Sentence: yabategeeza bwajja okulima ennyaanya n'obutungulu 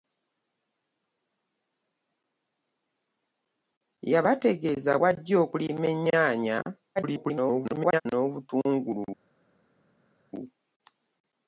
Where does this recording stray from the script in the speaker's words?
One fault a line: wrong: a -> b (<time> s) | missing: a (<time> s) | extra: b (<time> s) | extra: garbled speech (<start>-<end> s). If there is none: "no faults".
extra: garbled speech (7.0-8.0 s)